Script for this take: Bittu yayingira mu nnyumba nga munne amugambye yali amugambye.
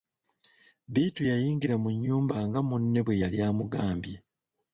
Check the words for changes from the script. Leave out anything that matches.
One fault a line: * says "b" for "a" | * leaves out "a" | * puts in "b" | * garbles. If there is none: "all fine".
* says "bwe" for "amugambye"